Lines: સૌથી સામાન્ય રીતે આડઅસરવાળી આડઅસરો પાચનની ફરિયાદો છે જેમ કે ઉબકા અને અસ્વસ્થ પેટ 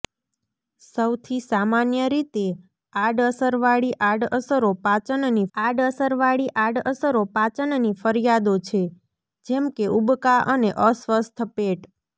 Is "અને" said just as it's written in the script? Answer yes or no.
yes